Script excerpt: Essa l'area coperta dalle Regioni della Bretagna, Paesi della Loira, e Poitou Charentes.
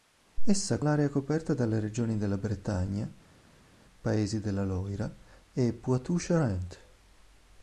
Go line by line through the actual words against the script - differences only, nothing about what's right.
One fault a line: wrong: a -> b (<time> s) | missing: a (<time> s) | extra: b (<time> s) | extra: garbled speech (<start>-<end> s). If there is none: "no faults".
no faults